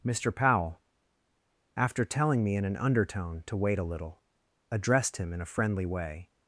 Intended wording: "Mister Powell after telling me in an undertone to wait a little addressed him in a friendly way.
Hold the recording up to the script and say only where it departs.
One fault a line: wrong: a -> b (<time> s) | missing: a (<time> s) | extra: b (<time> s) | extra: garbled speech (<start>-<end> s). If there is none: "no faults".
no faults